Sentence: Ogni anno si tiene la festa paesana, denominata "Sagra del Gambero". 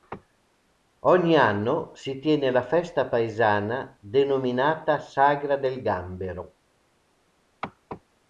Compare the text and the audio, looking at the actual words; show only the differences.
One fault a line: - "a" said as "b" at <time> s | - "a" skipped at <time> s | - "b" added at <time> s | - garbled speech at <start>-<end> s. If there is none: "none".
none